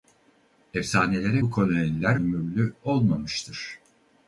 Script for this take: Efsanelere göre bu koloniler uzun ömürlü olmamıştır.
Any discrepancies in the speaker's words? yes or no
yes